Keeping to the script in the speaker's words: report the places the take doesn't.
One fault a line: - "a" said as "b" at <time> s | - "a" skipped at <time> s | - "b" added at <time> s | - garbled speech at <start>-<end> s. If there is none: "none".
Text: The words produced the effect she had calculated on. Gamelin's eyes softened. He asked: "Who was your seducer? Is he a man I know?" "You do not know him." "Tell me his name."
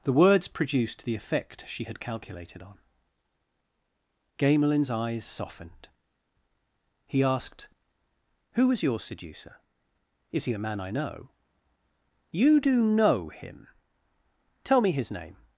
- "not" skipped at 12.8 s